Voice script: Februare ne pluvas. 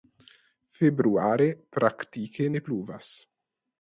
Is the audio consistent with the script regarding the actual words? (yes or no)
no